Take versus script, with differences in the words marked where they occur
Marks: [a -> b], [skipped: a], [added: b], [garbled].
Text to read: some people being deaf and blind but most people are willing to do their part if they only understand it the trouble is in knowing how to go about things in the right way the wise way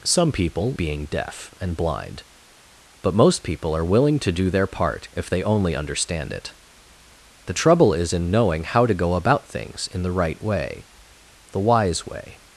some people being deaf and blind but most people are willing to do their part if they only understand it the trouble is in knowing how to go about things in the right way the wise way